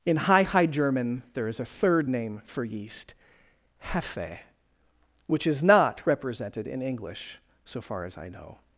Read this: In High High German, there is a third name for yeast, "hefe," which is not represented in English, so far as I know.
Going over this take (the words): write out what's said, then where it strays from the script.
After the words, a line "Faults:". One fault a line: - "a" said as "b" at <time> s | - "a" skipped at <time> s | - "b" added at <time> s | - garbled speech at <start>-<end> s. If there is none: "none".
In High High German, there is a third name for yeast, "hefe," which is not represented in English, so far as I know.
Faults:
none